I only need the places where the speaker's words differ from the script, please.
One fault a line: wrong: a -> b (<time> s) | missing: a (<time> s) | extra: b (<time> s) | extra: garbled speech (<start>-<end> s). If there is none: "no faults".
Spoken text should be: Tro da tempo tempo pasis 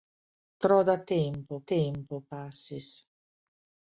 no faults